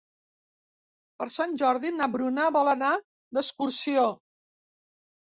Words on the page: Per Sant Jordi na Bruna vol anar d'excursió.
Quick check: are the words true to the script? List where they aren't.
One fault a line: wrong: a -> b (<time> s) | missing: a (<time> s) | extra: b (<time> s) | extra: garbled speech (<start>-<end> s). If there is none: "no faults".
no faults